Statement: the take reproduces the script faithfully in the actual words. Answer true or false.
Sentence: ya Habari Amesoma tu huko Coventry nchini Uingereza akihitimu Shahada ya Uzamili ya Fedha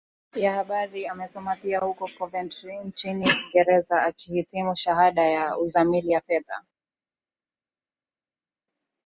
false